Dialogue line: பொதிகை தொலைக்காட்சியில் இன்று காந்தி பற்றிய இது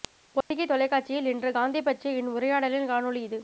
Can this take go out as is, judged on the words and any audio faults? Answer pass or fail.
fail